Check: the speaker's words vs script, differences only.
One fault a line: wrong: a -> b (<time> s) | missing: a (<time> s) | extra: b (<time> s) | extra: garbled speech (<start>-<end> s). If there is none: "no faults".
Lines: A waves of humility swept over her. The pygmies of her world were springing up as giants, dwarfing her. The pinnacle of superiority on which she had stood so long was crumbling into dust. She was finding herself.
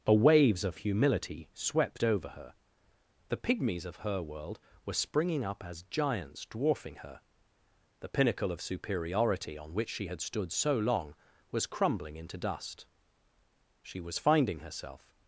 no faults